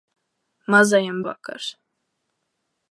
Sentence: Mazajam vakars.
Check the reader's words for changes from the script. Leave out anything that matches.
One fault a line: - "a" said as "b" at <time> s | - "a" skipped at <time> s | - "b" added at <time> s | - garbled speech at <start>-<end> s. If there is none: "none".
none